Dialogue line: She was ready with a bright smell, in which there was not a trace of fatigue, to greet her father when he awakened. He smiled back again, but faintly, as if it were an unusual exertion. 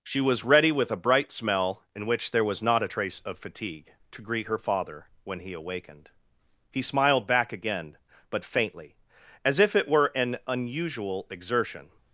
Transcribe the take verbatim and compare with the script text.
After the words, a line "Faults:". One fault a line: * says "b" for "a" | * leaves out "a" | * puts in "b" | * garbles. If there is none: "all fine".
She was ready with a bright smell, in which there was not a trace of fatigue, to greet her father when he awakened. He smiled back again, but faintly, as if it were an unusual exertion.
Faults:
all fine